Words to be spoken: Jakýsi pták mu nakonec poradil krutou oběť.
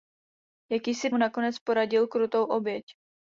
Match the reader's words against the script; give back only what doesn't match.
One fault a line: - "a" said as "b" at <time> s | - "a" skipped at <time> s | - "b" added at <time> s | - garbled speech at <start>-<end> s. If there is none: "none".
- "pták" skipped at 1.1 s